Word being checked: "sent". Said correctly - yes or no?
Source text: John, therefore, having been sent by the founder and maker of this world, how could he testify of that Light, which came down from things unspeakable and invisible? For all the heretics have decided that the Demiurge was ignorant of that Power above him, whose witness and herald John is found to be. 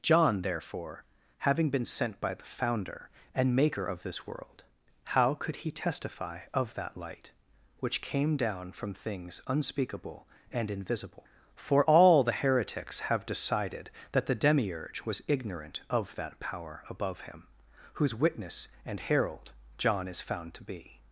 yes